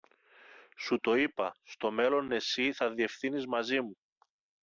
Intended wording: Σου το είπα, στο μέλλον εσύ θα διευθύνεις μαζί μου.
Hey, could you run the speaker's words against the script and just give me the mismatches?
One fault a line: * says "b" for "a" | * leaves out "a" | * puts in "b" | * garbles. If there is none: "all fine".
all fine